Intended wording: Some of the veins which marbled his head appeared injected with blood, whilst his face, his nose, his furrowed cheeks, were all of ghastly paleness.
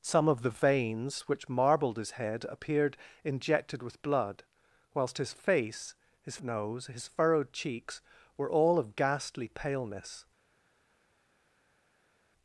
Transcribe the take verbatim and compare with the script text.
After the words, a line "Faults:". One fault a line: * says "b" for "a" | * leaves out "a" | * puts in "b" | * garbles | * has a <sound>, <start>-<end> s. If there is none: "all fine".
Some of the veins which marbled his head appeared injected with blood, whilst his face, his nose, his furrowed cheeks, were all of ghastly paleness.
Faults:
all fine